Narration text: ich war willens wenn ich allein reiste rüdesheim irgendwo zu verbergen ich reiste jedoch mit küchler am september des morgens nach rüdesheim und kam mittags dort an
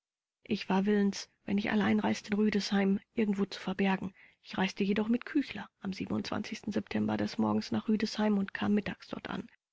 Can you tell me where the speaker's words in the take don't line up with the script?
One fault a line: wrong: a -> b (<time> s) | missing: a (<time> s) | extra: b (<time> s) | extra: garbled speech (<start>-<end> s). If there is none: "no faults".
no faults